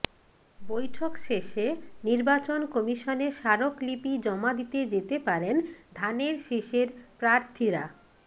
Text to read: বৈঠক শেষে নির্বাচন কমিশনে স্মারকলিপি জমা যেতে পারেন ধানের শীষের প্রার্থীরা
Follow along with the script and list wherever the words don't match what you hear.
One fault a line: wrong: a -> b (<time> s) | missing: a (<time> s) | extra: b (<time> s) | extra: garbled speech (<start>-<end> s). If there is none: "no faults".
extra: দিতে (4.5 s)